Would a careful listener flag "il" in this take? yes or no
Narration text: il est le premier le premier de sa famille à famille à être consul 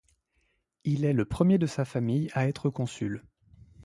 no